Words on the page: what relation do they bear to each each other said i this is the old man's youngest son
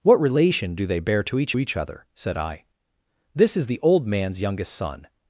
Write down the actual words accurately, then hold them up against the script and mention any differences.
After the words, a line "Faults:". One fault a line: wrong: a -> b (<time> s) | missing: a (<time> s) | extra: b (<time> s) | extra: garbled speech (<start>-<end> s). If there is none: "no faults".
what relation do they bear to each each other said i this is the old man's youngest son
Faults:
no faults